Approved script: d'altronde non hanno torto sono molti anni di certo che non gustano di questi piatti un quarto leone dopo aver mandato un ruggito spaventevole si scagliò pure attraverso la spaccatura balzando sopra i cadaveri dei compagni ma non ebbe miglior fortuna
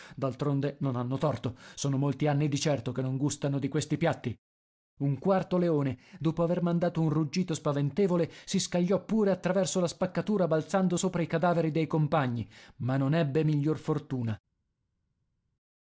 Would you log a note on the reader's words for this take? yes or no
no